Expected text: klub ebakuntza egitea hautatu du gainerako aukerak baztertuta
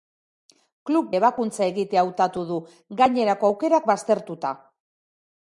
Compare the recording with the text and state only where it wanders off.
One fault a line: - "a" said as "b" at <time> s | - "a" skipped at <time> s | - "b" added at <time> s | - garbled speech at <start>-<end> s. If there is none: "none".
none